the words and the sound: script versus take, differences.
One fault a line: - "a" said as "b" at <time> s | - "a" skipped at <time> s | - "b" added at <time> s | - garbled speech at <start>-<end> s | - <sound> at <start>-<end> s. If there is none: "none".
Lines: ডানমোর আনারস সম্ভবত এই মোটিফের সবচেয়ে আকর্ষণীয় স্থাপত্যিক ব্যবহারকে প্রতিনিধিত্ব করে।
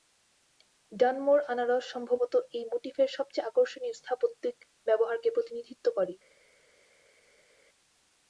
none